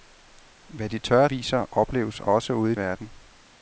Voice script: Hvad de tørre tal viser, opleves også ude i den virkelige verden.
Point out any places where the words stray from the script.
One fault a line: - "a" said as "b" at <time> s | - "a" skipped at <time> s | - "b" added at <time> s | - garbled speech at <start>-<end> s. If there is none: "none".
- "tal" skipped at 1.3 s
- "den virkelige" skipped at 2.7 s